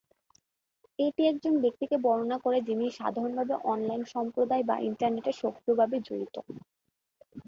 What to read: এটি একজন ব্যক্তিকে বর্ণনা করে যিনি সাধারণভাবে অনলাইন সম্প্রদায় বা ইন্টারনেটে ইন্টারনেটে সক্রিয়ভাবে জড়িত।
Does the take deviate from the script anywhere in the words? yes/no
yes